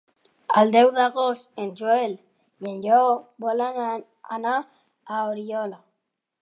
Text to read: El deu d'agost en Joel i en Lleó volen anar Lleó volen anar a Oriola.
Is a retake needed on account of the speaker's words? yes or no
yes